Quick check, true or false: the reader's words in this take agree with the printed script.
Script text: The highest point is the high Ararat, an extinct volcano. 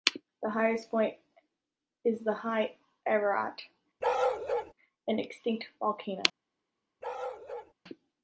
true